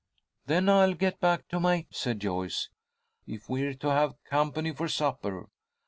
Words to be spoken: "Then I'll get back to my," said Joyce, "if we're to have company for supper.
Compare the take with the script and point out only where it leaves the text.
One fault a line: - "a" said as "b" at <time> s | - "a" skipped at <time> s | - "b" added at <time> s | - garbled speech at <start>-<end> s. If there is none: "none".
none